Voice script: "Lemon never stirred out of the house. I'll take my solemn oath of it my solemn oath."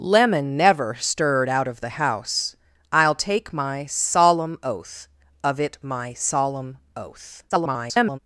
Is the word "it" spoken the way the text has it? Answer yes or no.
yes